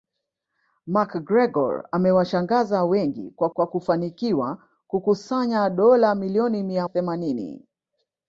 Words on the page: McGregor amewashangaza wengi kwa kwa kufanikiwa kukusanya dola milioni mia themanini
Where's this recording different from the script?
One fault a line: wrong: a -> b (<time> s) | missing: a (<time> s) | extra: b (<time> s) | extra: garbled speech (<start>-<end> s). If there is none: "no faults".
no faults